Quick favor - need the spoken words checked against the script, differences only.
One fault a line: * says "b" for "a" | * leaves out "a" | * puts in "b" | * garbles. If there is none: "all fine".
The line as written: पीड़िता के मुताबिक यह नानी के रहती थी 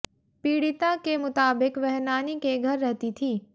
* says "वह" for "यह"
* puts in "घर"